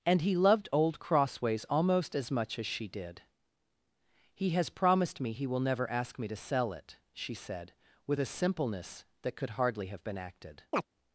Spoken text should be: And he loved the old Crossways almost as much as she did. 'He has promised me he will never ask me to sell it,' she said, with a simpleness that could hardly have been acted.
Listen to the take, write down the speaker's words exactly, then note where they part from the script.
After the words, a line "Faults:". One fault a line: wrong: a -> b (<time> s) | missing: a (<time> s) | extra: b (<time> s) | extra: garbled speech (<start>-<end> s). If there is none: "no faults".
And he loved old Crossways almost as much as she did. 'He has promised me he will never ask me to sell it,' she said, with a simpleness that could hardly have been acted.
Faults:
missing: the (0.7 s)